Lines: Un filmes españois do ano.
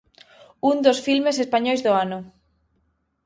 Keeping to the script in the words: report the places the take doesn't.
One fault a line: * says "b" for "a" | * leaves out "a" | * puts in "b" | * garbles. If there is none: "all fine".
* puts in "dos"